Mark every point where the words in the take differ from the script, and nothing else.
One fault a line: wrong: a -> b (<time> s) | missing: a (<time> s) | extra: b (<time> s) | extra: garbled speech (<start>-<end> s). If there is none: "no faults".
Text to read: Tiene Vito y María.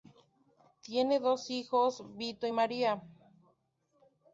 extra: dos hijos (1.2 s)